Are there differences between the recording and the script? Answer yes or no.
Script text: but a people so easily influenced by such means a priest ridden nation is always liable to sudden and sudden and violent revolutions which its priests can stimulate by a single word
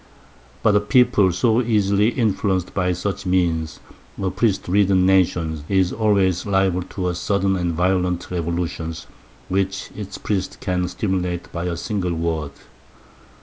yes